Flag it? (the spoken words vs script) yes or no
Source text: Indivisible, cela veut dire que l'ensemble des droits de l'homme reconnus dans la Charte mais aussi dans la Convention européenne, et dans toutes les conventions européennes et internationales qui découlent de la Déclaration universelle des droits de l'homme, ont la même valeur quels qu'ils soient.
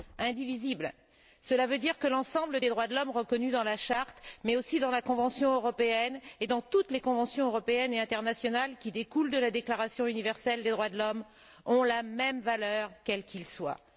no